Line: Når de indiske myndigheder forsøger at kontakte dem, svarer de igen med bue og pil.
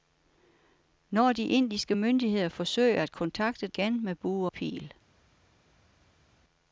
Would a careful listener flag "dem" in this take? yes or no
yes